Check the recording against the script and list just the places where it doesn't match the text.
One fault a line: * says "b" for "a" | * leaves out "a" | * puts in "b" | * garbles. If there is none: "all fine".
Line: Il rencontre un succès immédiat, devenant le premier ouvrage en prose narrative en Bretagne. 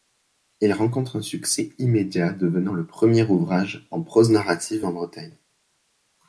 all fine